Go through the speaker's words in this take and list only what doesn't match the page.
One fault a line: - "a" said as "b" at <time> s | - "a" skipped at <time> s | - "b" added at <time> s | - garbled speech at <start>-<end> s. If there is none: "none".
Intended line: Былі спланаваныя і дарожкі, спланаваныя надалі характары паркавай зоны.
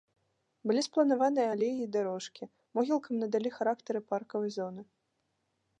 - "алеі" added at 1.5 s
- "спланаваныя" said as "могілкам" at 2.8 s